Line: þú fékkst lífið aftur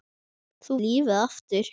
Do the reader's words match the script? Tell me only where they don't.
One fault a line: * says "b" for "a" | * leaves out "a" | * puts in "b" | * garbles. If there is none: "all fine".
* leaves out "fékkst"